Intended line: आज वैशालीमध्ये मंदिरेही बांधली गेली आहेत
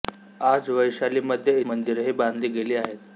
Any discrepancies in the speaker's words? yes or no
no